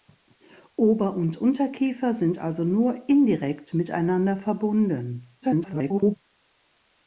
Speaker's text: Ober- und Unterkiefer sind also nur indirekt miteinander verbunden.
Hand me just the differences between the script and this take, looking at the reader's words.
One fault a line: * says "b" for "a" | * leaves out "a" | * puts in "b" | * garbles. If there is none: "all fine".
* garbles